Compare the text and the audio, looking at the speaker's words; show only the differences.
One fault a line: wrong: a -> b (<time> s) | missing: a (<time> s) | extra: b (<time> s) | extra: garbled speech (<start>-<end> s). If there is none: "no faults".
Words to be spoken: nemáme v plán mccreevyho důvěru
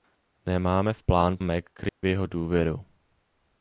no faults